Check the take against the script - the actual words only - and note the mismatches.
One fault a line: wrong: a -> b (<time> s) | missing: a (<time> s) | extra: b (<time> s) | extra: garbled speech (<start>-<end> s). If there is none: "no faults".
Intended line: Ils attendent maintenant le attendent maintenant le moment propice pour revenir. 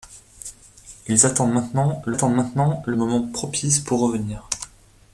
no faults